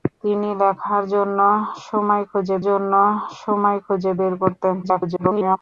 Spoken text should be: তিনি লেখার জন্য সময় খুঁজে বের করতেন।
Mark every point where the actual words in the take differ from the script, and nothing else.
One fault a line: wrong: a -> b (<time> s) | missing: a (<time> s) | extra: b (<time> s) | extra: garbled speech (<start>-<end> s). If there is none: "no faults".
extra: জন্য সময় খুঁজে (2.7 s)
extra: garbled speech (4.8-5.6 s)